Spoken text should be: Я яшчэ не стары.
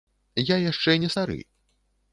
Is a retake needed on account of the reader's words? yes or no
no